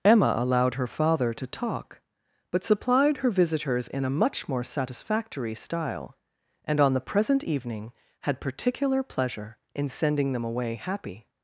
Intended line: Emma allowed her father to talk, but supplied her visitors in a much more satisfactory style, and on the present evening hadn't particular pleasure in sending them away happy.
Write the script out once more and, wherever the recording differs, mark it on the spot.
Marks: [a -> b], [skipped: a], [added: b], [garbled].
Emma allowed her father to talk, but supplied her visitors in a much more satisfactory style, and on the present evening [hadn't -> had] particular pleasure in sending them away happy.